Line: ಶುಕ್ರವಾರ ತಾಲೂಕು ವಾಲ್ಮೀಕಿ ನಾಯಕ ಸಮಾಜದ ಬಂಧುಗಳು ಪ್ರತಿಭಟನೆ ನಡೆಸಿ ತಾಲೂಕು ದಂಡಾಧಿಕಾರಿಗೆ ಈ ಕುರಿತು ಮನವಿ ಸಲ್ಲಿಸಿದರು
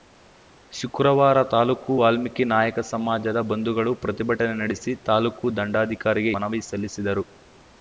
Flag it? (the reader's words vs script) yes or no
yes